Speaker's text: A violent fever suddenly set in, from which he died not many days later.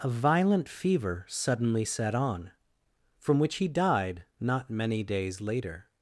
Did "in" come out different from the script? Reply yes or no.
yes